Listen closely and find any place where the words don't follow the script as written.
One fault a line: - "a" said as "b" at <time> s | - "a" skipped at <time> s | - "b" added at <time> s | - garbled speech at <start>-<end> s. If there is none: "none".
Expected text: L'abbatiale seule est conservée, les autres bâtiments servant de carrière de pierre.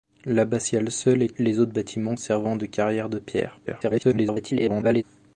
- "conservée" skipped at 1.3 s
- garbled speech at 3.7-5.0 s